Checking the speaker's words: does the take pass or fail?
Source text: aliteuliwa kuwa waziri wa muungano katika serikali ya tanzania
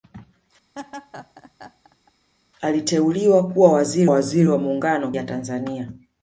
fail